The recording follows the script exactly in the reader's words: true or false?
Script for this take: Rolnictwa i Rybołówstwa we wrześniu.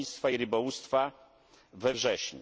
true